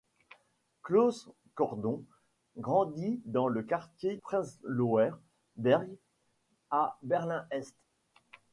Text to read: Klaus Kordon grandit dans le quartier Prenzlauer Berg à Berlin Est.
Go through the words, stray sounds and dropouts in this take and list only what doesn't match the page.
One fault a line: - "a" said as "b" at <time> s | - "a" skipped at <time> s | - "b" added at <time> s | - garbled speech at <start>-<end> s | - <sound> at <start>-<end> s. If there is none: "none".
none